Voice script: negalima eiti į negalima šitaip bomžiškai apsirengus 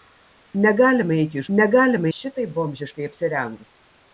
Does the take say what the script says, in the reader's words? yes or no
yes